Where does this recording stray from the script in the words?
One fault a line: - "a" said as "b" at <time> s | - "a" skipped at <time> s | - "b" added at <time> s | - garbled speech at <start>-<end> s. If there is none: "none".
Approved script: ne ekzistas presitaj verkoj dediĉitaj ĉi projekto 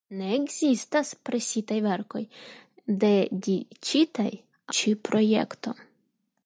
none